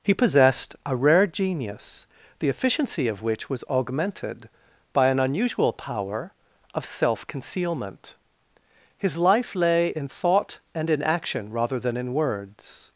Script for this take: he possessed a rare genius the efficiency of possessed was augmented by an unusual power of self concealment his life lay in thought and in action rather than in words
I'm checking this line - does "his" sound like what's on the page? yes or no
yes